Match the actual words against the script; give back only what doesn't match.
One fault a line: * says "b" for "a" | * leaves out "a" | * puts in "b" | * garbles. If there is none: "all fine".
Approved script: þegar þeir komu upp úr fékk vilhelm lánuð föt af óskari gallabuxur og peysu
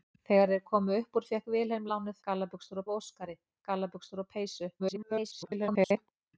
* says "gallabuxur" for "föt"
* garbles